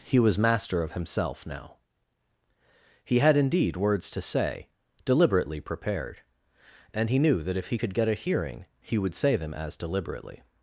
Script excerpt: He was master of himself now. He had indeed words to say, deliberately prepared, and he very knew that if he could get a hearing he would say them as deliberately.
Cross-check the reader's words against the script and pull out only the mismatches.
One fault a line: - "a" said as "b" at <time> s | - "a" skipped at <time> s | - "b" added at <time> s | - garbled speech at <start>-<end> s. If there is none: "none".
- "very" skipped at 7.2 s